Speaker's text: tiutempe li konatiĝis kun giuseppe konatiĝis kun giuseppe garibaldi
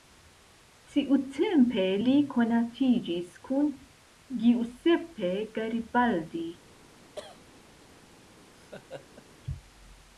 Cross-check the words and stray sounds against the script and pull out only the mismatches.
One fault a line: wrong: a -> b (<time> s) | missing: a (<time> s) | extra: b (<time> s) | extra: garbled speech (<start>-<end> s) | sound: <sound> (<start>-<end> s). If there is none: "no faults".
missing: konatiĝis kun giuseppe (5.3 s)
sound: cough (7.1-7.4 s)
sound: laugh (8.4-9.2 s)